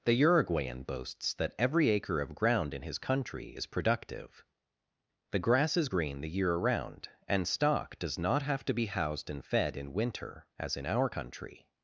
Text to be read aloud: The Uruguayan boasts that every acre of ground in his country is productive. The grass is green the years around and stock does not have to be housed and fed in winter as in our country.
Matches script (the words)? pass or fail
fail